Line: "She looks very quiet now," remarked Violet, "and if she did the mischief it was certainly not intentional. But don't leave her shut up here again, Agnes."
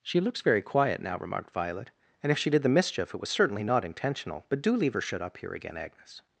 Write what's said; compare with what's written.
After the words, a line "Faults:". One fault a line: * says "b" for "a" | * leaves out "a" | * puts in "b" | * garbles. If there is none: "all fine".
"She looks very quiet now," remarked Violet, "and if she did the mischief it was certainly not intentional. But do leave her shut up here again, Agnes."
Faults:
* says "do" for "don't"